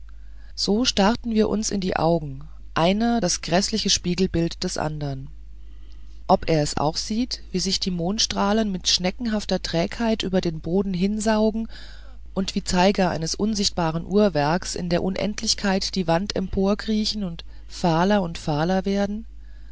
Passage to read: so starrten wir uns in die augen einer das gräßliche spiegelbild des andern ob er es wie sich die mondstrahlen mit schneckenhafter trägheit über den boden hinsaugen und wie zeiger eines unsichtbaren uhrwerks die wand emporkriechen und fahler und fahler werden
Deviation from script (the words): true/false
true